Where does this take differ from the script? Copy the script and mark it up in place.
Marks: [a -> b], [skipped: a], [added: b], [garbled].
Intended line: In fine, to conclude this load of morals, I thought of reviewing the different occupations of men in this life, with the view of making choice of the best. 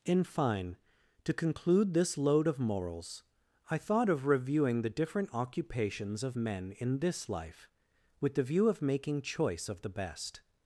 In fine, to conclude this load of morals, I thought of reviewing the different occupations of men in this life, with the view of making choice of the best.